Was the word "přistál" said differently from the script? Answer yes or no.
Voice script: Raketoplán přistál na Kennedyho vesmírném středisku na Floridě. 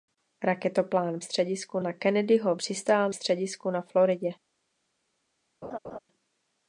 yes